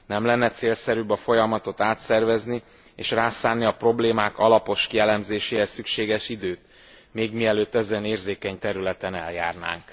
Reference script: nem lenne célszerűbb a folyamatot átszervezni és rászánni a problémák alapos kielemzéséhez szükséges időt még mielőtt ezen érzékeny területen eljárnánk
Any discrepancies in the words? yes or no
no